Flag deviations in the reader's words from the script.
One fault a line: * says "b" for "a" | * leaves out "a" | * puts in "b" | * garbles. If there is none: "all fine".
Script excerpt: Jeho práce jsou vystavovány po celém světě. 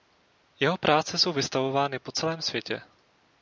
all fine